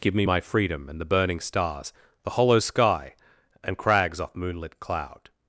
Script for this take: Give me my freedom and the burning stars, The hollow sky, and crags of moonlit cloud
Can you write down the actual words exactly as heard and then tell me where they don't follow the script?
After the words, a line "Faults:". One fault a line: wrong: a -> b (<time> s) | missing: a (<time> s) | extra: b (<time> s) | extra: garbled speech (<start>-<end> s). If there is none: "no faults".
Give me my freedom and the burning stars, The hollow sky, and crags off moonlit cloud
Faults:
wrong: of -> off (4.2 s)